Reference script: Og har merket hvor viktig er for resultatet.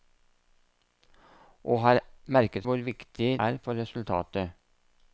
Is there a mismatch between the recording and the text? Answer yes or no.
no